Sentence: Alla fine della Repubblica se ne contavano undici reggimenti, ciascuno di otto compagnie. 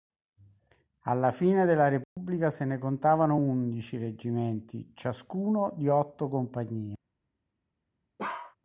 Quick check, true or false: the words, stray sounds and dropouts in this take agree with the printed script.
false